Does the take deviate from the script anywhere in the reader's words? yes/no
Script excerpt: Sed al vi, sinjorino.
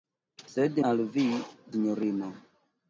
no